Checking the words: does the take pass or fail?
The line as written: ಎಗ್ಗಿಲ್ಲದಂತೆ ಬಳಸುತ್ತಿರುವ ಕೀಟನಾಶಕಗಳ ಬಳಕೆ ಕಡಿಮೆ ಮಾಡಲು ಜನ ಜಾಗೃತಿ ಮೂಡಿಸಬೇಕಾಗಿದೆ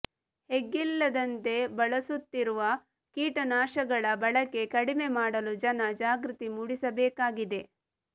pass